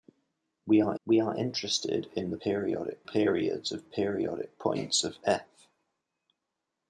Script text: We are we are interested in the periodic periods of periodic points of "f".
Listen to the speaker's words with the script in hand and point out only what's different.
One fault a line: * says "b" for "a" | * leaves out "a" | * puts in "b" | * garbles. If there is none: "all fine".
all fine